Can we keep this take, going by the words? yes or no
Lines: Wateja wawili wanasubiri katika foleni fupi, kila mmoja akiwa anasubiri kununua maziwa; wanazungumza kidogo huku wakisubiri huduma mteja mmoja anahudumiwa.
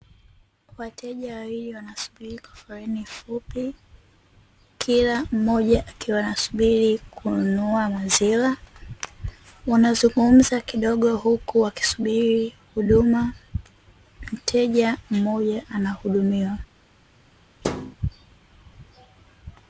no